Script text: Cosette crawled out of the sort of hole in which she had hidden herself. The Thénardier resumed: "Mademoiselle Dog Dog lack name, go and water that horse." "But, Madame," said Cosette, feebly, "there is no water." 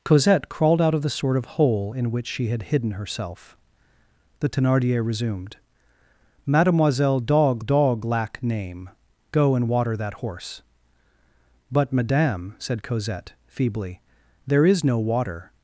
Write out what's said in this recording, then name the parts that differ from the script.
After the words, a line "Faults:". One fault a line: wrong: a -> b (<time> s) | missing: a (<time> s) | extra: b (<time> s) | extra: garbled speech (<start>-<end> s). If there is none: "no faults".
Cosette crawled out of the sort of hole in which she had hidden herself. The Thénardier resumed: "Mademoiselle Dog Dog lack name, go and water that horse." "But, Madame," said Cosette, feebly, "there is no water."
Faults:
no faults